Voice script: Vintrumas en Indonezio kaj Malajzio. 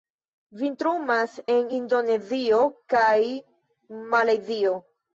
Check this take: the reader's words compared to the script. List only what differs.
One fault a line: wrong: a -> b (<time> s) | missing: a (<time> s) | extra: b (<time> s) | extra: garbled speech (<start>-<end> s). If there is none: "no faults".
no faults